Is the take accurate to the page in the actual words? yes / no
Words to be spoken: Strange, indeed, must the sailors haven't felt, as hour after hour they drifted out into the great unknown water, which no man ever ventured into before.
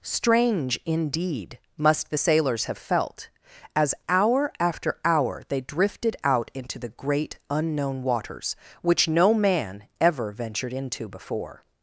no